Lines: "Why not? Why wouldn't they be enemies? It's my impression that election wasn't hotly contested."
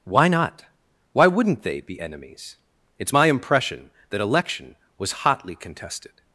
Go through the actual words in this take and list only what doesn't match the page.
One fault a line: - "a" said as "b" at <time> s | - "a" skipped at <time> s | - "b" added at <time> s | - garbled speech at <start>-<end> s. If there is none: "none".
- "wasn't" said as "was" at 5.0 s